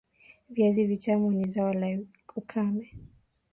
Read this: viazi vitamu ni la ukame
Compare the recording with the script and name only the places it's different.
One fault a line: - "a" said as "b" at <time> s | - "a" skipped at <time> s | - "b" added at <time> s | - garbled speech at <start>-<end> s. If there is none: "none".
- "zao" added at 1.5 s